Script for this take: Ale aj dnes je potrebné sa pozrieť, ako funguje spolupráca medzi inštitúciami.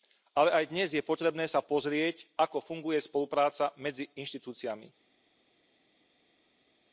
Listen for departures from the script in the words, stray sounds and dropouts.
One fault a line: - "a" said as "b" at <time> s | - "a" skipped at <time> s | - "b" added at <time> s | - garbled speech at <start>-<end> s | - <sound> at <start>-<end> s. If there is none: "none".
none